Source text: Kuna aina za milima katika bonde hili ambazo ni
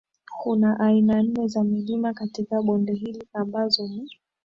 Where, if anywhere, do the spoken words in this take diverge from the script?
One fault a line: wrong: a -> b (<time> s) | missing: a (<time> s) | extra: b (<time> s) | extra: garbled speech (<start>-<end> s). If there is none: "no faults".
extra: nne (1.2 s)